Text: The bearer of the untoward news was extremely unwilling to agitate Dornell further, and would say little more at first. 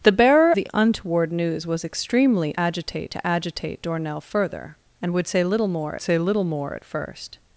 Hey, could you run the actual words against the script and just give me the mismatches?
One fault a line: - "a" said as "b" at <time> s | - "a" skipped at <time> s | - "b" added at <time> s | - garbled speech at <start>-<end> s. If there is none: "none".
- "of" skipped at 0.5 s
- "unwilling" said as "agitate" at 2.6 s
- "say little more" added at 6.0 s